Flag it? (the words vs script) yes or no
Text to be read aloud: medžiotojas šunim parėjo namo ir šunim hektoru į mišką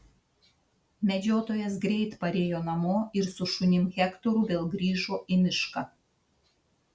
yes